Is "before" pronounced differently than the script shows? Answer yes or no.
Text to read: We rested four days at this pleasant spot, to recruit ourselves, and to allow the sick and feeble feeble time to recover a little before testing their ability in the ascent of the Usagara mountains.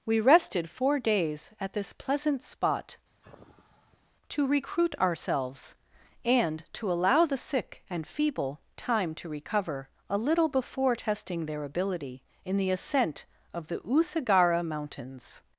no